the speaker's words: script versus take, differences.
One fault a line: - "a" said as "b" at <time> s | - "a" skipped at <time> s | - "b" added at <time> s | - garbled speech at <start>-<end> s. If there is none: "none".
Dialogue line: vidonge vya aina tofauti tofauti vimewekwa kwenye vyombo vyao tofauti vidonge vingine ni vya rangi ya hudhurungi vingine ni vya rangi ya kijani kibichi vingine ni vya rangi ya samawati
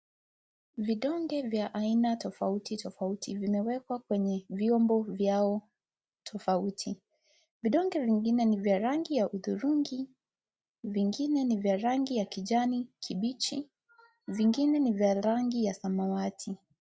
none